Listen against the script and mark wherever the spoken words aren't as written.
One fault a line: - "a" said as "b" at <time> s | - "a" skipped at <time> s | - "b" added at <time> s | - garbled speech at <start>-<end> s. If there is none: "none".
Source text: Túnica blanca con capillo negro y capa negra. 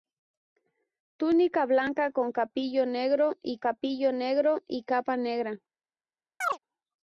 - "capillo negro y" added at 3.6 s